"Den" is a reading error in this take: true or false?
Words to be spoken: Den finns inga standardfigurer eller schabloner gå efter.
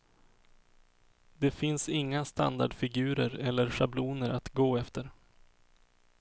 true